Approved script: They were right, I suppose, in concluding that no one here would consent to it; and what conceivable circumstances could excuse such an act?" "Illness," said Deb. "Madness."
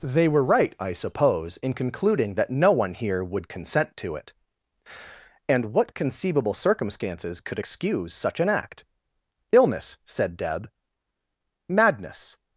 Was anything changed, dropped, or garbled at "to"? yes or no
no